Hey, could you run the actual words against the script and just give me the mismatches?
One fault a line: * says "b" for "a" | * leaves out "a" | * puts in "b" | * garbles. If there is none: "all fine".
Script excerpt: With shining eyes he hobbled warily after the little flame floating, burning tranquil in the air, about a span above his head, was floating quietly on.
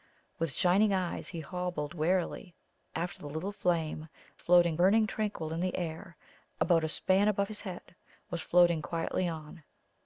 all fine